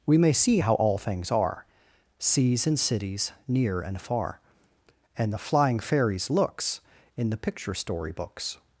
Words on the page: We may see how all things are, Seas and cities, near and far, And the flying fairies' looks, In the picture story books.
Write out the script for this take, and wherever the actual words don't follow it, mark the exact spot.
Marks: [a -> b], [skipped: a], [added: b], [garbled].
We may see how all things are, Seas and cities, near and far, And the flying fairies' looks, In the picture story books.